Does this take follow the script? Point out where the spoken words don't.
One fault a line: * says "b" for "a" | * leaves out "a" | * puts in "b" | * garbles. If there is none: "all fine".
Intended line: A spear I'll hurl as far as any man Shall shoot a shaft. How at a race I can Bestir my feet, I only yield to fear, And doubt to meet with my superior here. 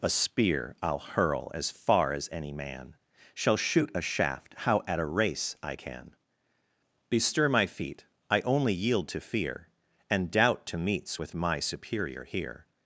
* says "meets" for "meet"